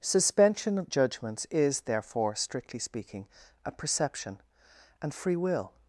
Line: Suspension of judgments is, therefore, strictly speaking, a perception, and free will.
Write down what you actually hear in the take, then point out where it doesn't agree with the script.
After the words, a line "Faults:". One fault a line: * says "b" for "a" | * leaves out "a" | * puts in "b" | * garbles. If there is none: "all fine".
Suspension of judgments is, therefore, strictly speaking, a perception, and free will.
Faults:
all fine